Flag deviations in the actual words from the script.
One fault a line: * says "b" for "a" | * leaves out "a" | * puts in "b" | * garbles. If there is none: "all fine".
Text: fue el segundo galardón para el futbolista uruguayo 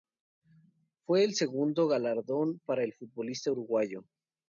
all fine